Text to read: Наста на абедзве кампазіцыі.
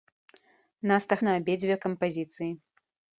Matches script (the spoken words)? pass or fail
pass